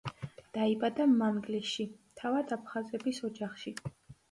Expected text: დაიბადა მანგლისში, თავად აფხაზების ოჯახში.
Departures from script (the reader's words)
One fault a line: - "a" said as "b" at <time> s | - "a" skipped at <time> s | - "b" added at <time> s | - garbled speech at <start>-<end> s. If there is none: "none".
none